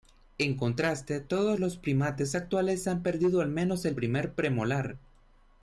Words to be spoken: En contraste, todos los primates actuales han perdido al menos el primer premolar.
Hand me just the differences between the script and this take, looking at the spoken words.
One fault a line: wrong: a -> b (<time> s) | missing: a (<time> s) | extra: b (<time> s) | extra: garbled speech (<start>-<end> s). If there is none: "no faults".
no faults